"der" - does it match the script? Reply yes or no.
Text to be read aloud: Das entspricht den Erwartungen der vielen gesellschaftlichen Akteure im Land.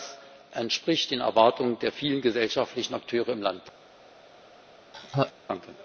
yes